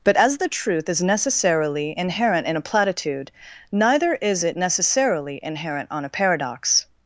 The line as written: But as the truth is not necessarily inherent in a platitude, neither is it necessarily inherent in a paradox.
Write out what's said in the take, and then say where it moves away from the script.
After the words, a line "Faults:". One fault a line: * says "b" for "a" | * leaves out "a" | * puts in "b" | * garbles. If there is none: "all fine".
But as the truth is necessarily inherent in a platitude, neither is it necessarily inherent on a paradox.
Faults:
* leaves out "not"
* says "on" for "in"